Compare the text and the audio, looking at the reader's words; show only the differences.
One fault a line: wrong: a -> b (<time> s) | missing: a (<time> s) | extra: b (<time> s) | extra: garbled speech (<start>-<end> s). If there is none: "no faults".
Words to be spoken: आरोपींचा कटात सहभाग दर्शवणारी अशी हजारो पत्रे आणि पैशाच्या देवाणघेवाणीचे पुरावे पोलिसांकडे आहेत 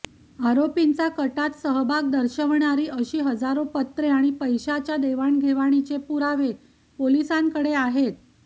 no faults